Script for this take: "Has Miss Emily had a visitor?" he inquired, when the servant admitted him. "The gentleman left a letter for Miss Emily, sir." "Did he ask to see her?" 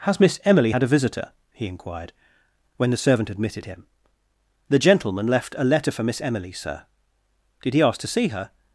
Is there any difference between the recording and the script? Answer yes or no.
no